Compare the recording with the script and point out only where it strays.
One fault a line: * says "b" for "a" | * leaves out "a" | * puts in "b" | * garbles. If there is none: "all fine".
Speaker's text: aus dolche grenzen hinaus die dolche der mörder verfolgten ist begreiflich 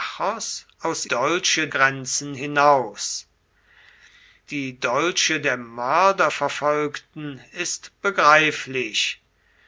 all fine